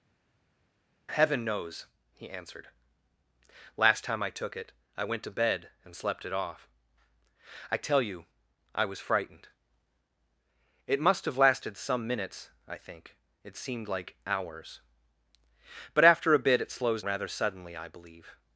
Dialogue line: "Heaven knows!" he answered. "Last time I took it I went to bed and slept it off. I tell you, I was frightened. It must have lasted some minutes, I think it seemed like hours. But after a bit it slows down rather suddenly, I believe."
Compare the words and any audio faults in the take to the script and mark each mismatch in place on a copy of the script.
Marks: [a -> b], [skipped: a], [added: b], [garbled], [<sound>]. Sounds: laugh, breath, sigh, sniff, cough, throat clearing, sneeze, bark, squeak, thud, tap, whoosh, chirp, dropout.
"Heaven knows!" he answered. "Last time I took it I went to bed and slept it off. I tell you, I was frightened. It must have lasted some minutes, I think it seemed like hours. But after a bit it slows [skipped: down] rather suddenly, I believe."